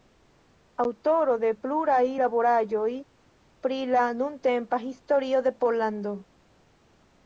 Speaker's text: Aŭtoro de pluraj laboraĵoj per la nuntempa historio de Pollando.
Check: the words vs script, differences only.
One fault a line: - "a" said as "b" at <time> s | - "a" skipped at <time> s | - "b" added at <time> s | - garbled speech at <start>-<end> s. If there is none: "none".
- "per" said as "pri" at 3.7 s